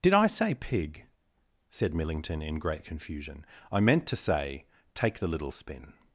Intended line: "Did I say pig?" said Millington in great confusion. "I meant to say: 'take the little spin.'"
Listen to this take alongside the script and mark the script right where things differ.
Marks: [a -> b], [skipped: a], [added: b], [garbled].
"Did I say pig?" said Millington in great confusion. "I meant to say: 'take the little spin.'"